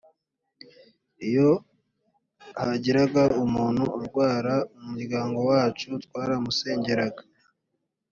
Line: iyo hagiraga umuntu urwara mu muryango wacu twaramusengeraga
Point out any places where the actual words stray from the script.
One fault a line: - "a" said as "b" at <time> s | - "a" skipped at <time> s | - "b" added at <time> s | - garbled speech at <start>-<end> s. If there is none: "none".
none